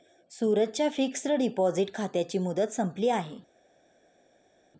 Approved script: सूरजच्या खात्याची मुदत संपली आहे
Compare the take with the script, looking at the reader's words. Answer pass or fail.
fail